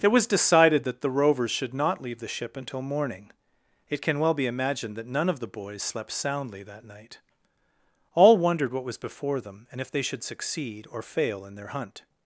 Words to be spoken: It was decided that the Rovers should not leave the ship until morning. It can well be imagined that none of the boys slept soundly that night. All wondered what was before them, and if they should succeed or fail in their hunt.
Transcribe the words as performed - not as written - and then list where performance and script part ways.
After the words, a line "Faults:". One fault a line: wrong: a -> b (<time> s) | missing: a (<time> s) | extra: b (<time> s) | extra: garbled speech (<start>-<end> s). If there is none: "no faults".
It was decided that the Rovers should not leave the ship until morning. It can well be imagined that none of the boys slept soundly that night. All wondered what was before them, and if they should succeed or fail in their hunt.
Faults:
no faults